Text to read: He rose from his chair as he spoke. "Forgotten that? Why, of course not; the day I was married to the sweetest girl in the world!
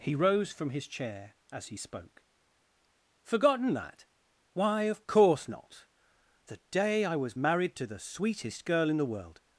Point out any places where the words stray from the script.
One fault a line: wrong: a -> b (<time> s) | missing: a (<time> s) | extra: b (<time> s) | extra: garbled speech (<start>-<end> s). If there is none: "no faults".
no faults